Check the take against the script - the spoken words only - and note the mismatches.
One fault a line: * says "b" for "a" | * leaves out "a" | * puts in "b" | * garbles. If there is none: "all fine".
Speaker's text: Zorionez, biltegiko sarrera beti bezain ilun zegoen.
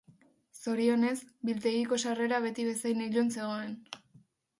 all fine